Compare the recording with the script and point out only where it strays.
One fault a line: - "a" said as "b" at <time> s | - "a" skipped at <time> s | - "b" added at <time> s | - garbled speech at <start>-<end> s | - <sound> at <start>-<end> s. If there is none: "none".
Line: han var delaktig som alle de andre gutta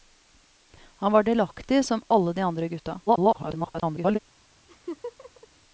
- garbled speech at 3.1-4.2 s
- laugh at 4.7-5.5 s